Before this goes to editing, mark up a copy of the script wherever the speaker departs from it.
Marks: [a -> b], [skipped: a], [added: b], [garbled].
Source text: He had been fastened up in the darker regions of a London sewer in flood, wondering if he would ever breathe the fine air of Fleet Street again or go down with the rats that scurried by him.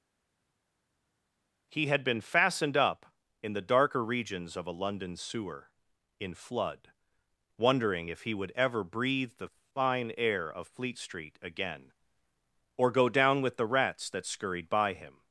He had been fastened up in the darker regions of a London sewer in flood, wondering if he would ever breathe the fine air of Fleet Street again or go down with the rats that scurried by him.